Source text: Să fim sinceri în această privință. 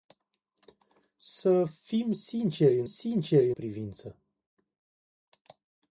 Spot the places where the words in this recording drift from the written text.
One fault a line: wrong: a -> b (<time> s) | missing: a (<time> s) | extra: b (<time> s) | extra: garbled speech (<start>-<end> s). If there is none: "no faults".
wrong: această -> sinceri (2.8 s)